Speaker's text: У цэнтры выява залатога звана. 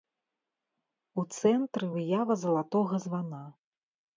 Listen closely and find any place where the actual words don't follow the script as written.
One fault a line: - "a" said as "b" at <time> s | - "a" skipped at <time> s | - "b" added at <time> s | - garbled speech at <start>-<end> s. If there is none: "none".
none